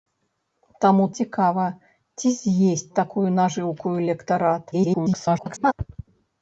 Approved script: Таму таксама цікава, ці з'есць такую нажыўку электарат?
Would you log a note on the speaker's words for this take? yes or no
yes